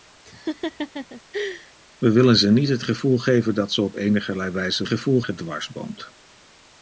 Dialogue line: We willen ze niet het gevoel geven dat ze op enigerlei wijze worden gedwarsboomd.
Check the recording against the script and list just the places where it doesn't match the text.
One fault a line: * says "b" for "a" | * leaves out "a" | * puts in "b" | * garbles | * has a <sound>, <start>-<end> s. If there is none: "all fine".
* has a laugh, 0.2-1.7 s
* says "gevoel" for "worden"